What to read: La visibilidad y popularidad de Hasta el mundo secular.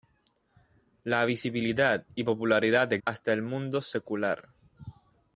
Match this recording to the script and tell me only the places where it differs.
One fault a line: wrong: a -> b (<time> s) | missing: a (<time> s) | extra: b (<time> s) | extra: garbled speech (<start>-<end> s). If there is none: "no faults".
no faults